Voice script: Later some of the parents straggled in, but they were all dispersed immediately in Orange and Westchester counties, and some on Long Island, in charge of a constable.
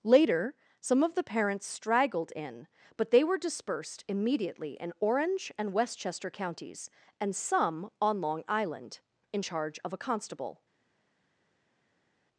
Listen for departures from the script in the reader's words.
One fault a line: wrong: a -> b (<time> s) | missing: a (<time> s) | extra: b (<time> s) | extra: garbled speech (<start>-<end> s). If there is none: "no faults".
missing: all (3.4 s)